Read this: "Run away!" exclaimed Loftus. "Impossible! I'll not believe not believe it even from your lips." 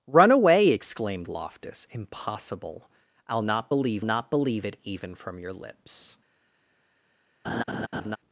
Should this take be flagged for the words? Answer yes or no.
no